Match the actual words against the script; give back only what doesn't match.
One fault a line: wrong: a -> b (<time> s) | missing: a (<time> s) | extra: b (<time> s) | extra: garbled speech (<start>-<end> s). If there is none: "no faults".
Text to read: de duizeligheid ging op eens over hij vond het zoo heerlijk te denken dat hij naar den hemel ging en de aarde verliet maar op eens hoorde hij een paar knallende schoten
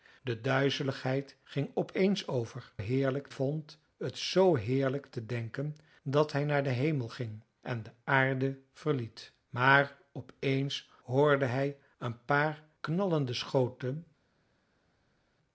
wrong: hij -> heerlijk (2.8 s)